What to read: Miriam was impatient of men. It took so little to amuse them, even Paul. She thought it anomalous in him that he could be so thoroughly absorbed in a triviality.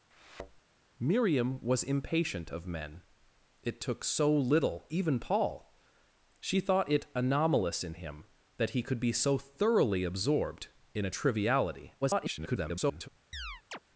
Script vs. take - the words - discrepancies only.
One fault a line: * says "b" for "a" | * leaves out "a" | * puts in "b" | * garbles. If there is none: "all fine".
* leaves out "to amuse them"
* garbles